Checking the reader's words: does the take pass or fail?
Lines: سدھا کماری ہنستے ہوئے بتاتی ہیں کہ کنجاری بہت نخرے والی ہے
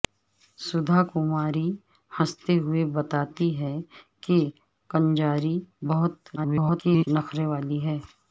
fail